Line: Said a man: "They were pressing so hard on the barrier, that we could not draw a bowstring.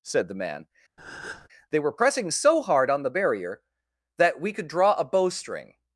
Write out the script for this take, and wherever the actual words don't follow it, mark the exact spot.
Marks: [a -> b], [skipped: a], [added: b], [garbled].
Said [a -> the] man: "They were pressing so hard on the barrier, that we could [skipped: not] draw a bowstring.